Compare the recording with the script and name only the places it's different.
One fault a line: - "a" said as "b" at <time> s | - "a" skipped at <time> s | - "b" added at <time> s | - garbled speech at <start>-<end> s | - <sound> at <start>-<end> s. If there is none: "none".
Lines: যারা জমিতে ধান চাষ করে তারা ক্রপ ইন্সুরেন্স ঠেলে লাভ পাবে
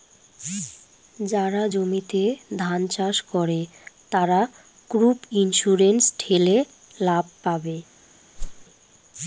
- whoosh at 8.4-8.7 s